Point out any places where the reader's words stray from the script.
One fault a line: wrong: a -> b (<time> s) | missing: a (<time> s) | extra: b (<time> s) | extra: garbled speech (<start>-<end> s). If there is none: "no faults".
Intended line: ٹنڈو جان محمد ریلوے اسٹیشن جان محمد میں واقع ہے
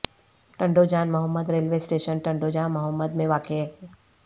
extra: ٹنڈو (2.2 s)